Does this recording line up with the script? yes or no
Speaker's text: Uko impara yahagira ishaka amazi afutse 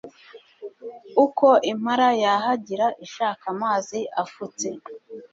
yes